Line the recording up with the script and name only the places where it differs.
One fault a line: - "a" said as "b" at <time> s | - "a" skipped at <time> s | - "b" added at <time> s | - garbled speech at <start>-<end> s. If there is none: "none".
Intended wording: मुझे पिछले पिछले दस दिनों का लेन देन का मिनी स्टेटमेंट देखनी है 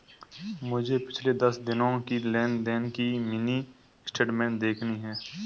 - "पिछले" skipped at 1.3 s
- "का" said as "की" at 2.0 s
- "का" said as "की" at 2.9 s